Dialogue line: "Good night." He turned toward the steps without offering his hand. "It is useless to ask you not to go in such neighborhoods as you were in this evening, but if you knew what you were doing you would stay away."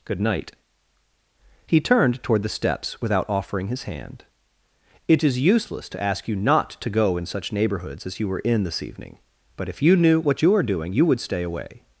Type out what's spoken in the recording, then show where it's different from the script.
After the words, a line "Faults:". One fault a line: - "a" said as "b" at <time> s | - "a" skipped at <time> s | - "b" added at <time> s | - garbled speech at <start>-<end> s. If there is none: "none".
"Good night." He turned toward the steps without offering his hand. "It is useless to ask you not to go in such neighborhoods as you were in this evening, but if you knew what you are doing you would stay away."
Faults:
- "were" said as "are" at 10.6 s